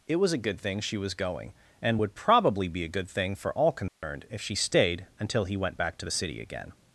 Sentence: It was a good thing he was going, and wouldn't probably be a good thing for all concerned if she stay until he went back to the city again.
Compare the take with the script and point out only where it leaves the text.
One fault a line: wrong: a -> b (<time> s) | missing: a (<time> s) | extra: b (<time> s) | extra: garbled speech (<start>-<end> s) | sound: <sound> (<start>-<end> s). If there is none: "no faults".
wrong: he -> she (0.8 s)
wrong: wouldn't -> would (2.0 s)
sound: dropout (3.9-4.0 s)
wrong: stay -> stayed (4.6 s)